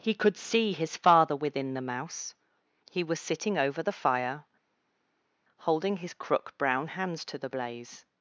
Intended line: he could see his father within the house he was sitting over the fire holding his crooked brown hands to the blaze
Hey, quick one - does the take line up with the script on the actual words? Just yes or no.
no